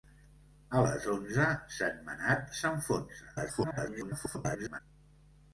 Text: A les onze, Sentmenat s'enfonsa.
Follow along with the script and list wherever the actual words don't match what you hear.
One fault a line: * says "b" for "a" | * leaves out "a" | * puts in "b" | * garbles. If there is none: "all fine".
* garbles